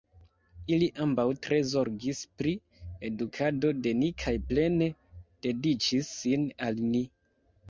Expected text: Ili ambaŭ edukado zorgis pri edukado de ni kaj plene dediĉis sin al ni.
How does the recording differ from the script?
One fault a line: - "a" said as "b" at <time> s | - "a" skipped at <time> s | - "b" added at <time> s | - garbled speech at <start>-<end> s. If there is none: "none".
- "edukado" said as "tre" at 1.5 s